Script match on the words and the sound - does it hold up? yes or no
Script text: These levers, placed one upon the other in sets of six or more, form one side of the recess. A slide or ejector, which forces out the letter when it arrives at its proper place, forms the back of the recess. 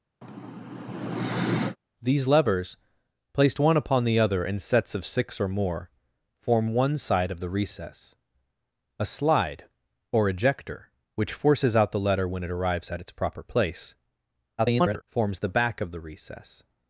no